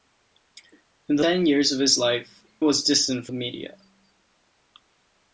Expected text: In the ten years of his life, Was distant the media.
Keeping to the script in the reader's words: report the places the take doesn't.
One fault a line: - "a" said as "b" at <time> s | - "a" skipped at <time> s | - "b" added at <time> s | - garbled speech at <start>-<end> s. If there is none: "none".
none